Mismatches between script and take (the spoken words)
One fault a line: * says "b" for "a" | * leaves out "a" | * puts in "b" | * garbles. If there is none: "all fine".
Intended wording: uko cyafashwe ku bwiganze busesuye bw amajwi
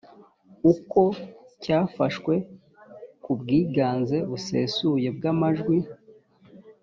all fine